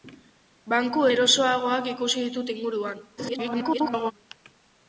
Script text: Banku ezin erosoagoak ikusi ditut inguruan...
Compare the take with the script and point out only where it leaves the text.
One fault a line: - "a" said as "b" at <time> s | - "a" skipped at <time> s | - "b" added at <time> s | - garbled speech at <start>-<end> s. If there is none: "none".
- "ezin" skipped at 1.0 s
- garbled speech at 3.2-4.1 s